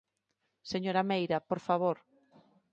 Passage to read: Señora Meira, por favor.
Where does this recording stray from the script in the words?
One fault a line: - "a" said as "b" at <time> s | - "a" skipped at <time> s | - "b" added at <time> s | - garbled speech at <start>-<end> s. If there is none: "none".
none